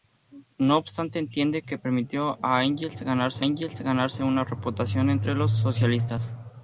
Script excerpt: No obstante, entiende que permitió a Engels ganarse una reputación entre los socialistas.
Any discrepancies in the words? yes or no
yes